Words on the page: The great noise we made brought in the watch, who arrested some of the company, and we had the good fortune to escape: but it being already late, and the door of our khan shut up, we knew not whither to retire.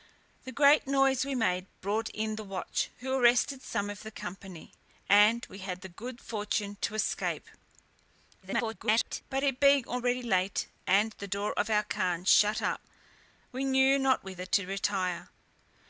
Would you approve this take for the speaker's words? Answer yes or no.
no